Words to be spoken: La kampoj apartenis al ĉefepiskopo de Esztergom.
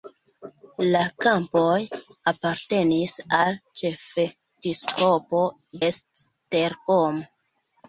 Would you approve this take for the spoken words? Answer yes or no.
no